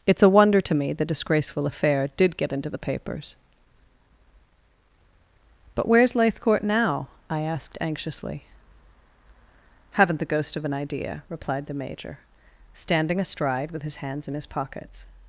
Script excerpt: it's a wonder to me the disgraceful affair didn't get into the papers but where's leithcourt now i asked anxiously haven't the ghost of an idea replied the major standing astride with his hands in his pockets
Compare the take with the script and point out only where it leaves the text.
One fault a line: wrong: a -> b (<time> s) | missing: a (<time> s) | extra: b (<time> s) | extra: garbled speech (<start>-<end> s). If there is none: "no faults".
wrong: didn't -> did (2.2 s)